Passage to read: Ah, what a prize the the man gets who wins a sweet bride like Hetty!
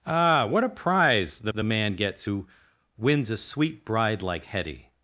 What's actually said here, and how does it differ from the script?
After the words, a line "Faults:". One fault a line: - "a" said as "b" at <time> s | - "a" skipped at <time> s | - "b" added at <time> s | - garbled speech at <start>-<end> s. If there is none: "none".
Ah, what a prize the the man gets who wins a sweet bride like Hetty!
Faults:
none